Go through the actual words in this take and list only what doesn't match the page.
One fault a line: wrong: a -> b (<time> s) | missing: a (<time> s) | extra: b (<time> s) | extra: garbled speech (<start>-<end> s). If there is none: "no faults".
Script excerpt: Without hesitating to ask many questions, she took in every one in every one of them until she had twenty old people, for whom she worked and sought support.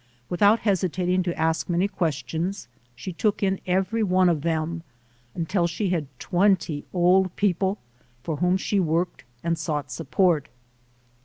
missing: in every one (4.3 s)